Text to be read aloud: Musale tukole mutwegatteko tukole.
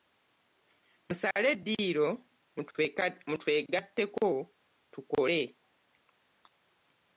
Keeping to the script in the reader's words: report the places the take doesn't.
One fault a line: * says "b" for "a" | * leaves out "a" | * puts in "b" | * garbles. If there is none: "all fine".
* says "eddiiro" for "tukole"